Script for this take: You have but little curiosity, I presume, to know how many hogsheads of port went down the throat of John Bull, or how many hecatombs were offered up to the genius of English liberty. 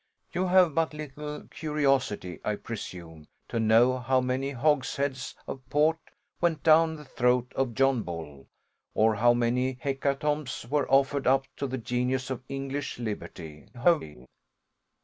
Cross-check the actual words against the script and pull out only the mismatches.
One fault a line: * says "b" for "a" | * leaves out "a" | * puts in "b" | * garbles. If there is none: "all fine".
* garbles